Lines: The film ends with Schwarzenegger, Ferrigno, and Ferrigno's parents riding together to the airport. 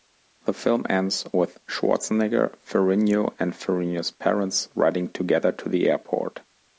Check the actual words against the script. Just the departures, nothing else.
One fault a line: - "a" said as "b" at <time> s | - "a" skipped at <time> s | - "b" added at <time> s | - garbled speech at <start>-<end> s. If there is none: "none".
none